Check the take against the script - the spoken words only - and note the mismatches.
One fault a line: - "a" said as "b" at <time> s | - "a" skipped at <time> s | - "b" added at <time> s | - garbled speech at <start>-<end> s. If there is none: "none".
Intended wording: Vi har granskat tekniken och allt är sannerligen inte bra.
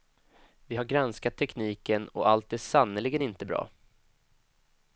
none